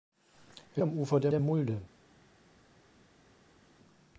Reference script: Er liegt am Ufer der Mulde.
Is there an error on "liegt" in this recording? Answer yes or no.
yes